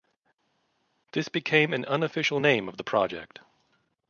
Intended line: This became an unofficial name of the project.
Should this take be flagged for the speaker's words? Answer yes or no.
no